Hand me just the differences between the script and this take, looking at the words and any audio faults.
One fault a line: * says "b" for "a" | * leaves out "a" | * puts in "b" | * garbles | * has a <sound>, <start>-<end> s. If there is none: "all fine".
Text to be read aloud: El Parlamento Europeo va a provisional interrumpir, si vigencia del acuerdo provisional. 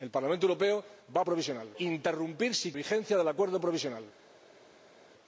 all fine